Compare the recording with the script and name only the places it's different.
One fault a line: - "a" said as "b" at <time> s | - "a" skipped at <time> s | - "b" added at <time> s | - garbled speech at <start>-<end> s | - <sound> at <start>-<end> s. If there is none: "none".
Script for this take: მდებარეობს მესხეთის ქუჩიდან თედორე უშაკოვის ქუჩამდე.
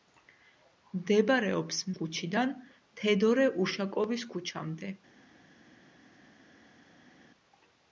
- "მესხეთის" skipped at 1.8 s